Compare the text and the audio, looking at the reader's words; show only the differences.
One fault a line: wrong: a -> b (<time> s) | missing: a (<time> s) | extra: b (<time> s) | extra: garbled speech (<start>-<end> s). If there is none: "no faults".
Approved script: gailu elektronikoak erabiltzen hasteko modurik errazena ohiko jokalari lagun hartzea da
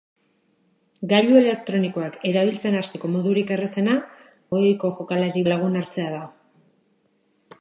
no faults